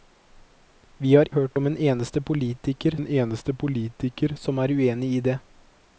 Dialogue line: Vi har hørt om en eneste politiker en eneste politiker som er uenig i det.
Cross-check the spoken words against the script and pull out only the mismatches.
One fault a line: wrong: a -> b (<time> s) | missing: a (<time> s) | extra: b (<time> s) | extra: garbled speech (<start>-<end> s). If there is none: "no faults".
no faults